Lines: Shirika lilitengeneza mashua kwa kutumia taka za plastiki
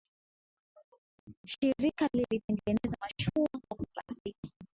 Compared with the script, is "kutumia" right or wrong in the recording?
wrong